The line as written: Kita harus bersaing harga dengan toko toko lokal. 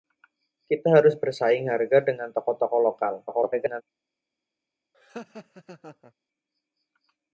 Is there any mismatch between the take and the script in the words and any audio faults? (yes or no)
yes